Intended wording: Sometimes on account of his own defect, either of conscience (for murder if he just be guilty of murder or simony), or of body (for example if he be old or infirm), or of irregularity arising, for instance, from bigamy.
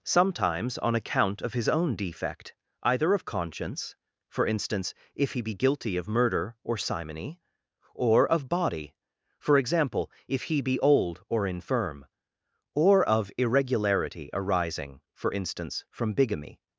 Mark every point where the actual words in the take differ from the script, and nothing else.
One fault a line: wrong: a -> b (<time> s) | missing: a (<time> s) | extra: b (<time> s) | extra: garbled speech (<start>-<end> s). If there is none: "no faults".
wrong: murder -> instance (4.5 s)
missing: just (5.4 s)